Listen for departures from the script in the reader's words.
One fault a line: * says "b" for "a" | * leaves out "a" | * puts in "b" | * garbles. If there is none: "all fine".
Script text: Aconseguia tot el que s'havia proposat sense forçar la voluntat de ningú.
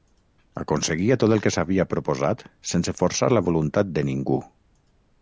all fine